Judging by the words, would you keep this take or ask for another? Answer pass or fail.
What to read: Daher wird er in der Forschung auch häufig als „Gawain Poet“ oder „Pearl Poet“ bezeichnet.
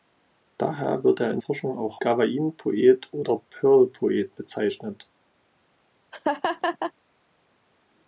fail